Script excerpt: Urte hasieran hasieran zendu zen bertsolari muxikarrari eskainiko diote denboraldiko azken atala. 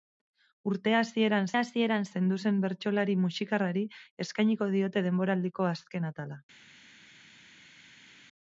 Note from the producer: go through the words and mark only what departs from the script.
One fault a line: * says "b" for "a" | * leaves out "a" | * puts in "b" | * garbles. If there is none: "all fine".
all fine